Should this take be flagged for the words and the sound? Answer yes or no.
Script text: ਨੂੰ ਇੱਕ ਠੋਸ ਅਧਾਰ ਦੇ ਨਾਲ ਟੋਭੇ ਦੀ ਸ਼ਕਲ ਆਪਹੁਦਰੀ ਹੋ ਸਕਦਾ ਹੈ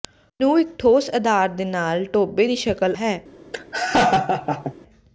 yes